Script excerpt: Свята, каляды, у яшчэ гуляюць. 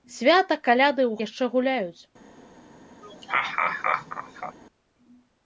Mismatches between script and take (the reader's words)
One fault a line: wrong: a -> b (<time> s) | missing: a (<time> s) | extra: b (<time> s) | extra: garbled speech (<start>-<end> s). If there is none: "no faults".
no faults